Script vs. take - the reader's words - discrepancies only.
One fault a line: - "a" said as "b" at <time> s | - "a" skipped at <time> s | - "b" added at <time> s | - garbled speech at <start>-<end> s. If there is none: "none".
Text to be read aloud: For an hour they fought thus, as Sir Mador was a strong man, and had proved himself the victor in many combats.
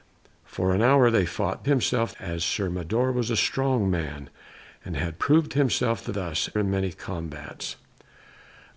- "thus" said as "himself" at 1.7 s
- "victor" said as "thus" at 6.1 s